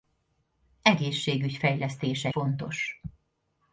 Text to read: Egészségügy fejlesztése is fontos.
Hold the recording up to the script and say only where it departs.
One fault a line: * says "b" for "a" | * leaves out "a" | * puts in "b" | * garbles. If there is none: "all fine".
* leaves out "is"